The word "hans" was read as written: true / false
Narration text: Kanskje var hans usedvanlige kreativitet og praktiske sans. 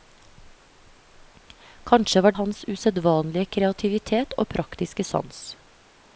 true